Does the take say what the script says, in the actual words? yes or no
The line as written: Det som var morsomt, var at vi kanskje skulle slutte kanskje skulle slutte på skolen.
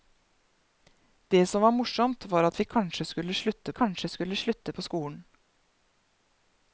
yes